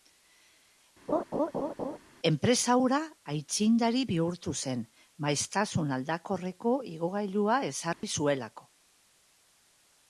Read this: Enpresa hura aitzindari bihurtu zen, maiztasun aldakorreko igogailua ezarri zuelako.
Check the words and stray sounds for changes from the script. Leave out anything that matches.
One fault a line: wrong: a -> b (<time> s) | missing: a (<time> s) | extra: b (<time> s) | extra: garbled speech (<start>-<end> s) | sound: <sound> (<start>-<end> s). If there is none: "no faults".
sound: laugh (1.1-2.0 s)
sound: dropout (7.9-8.0 s)